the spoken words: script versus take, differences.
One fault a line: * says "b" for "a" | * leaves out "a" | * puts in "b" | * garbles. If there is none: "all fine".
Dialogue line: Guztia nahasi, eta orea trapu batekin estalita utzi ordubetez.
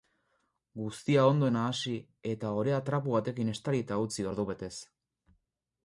* puts in "ondo"